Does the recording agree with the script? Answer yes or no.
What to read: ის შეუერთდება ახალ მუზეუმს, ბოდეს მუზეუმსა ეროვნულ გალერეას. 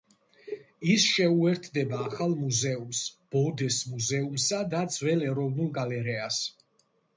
no